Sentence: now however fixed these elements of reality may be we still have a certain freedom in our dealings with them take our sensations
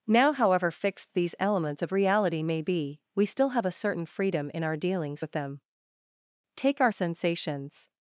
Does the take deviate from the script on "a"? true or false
false